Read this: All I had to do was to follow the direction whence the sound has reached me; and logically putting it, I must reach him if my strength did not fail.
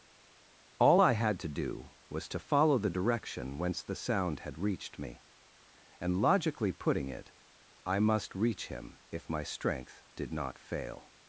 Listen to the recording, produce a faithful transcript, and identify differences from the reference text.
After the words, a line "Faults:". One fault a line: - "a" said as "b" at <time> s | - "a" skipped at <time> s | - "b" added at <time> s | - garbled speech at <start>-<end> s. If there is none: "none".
All I had to do was to follow the direction whence the sound had reached me; and logically putting it, I must reach him if my strength did not fail.
Faults:
- "has" said as "had" at 4.4 s